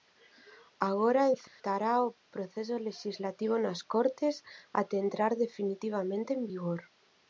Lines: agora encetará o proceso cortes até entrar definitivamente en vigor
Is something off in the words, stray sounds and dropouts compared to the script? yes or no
yes